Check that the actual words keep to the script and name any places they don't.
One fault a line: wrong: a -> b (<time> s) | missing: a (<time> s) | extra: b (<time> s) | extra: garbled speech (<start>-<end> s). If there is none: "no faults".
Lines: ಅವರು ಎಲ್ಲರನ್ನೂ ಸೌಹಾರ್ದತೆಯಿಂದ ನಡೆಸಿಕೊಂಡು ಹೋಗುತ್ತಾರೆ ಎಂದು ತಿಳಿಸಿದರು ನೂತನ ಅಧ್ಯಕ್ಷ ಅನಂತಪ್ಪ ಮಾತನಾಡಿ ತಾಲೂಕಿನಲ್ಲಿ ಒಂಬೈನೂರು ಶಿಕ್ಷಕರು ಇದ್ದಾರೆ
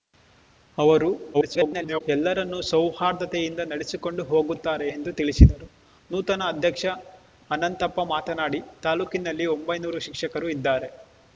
extra: garbled speech (1.3-2.0 s)